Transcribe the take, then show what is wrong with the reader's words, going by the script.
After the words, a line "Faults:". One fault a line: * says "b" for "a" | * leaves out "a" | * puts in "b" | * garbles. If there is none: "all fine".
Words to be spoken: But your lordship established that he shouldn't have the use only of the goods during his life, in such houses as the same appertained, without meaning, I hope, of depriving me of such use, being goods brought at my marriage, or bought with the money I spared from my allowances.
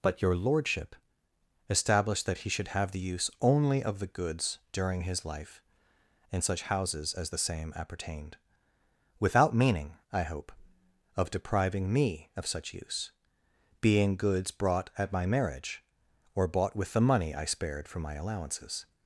But your lordship established that he should have the use only of the goods during his life, in such houses as the same appertained, without meaning, I hope, of depriving me of such use, being goods brought at my marriage, or bought with the money I spared from my allowances.
Faults:
* says "should" for "shouldn't"